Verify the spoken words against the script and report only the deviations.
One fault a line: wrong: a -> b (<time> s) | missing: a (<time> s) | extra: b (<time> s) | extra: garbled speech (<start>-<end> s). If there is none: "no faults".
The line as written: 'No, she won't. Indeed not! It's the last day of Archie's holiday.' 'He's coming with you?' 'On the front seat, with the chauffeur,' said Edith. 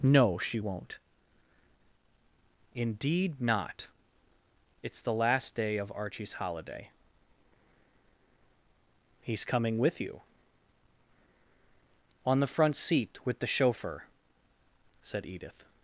no faults